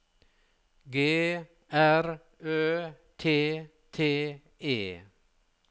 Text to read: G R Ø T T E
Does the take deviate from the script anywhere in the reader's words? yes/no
no